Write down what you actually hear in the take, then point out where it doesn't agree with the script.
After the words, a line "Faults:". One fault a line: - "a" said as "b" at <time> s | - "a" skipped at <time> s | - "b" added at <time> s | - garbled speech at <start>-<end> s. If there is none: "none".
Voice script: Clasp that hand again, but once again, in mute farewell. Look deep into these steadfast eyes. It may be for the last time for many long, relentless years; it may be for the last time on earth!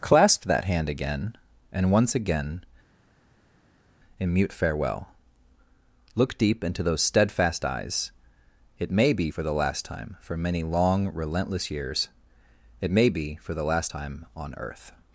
Clasp that hand again, and once again, in mute farewell. Look deep into those steadfast eyes. It may be for the last time for many long, relentless years; it may be for the last time on earth!
Faults:
- "but" said as "and" at 1.7 s
- "these" said as "those" at 6.8 s